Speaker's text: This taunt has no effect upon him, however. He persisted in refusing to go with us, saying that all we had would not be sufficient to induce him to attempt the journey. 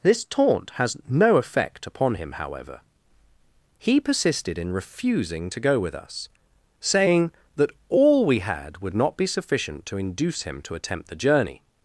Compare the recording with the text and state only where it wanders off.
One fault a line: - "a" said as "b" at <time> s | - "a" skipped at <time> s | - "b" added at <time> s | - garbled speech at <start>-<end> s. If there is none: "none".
none